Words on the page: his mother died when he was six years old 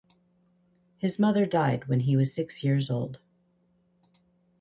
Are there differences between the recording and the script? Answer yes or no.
no